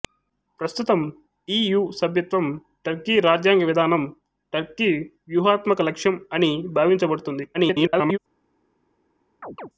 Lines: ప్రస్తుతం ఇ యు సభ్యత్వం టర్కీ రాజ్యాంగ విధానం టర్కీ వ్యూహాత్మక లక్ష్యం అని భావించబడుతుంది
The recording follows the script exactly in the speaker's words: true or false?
false